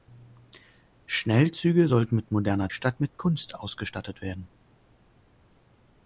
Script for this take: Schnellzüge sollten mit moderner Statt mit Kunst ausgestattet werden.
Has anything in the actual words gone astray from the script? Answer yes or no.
no